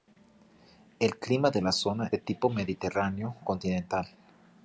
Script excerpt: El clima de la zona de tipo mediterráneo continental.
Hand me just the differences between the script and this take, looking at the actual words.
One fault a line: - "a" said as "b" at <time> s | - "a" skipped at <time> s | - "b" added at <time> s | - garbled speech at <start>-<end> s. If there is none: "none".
none